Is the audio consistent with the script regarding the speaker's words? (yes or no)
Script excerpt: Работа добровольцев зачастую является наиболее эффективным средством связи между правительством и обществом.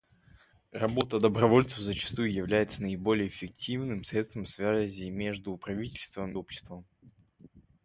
no